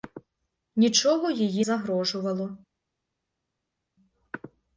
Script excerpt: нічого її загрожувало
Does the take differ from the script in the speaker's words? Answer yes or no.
no